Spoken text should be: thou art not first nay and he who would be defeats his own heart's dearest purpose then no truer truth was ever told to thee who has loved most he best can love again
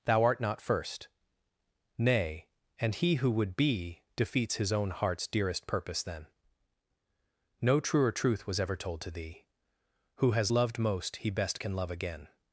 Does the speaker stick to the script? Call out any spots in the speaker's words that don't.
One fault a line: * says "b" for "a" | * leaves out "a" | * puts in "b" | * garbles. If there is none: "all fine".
all fine